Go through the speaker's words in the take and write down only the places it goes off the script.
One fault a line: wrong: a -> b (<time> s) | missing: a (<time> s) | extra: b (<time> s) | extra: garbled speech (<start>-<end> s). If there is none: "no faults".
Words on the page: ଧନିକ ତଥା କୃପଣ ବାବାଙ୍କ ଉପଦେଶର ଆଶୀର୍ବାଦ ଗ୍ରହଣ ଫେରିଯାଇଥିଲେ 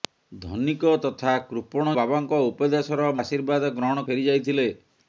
no faults